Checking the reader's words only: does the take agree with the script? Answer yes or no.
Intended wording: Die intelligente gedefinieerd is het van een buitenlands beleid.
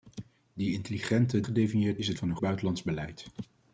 yes